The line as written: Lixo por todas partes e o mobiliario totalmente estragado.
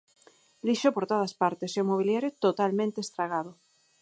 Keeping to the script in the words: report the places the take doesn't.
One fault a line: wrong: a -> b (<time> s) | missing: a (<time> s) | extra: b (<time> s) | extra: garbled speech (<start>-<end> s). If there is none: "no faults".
no faults